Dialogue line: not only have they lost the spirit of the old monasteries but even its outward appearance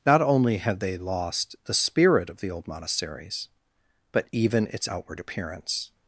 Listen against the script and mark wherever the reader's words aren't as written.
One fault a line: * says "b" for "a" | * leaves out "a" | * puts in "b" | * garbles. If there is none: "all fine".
all fine